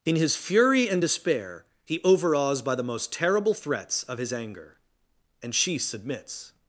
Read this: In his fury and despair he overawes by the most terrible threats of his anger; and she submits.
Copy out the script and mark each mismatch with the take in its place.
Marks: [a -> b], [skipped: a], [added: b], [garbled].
In his fury and despair he overawes by the most terrible threats of his anger; and she submits.